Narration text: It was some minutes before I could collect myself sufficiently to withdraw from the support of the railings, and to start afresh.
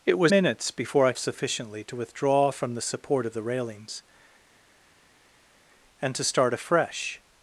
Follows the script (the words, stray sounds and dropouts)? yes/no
no